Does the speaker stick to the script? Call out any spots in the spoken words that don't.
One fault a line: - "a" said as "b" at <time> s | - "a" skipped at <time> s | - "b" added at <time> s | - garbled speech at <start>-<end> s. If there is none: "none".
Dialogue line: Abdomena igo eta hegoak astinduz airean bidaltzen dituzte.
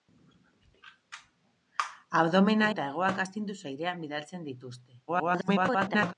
- "igo" skipped at 2.7 s
- garbled speech at 5.1-6.1 s